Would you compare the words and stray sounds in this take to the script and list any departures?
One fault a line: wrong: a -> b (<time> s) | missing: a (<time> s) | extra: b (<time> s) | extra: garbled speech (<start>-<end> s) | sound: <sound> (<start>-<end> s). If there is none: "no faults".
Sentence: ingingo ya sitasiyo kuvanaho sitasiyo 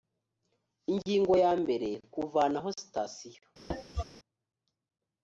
wrong: sitasiyo -> mbere (1.6 s)
sound: cough (3.7-4.0 s)